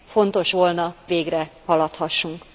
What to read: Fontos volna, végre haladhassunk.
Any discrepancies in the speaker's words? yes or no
no